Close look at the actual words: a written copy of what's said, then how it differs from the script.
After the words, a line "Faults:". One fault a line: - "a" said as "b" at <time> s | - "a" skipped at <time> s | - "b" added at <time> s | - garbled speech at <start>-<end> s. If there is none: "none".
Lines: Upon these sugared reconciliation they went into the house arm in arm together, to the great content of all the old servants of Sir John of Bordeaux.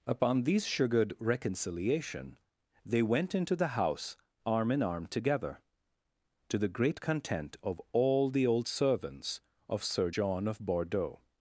Upon these sugared reconciliation they went into the house arm in arm together, to the great content of all the old servants of Sir John of Bordeaux.
Faults:
none